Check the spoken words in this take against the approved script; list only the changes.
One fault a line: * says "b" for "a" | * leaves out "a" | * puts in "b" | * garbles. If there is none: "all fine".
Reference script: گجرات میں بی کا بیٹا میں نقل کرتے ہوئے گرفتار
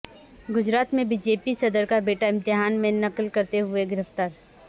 * puts in "جے پی صدر"
* puts in "امتحان"